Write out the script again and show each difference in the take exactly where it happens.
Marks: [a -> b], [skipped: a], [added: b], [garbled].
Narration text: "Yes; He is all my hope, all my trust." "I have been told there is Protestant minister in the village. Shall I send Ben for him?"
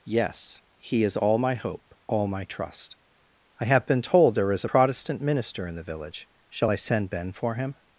"Yes; He is all my hope, all my trust." "I have been told there is Protestant minister in the village. Shall I send Ben for him?"